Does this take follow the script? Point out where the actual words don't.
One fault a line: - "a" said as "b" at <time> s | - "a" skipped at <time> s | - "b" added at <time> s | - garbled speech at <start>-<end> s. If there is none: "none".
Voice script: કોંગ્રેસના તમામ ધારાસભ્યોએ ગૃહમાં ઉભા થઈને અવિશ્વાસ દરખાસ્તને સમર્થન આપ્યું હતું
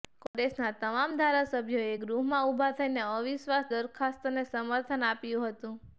none